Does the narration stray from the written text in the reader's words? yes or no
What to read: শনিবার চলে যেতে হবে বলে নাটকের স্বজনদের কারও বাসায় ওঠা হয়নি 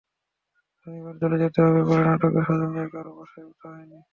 no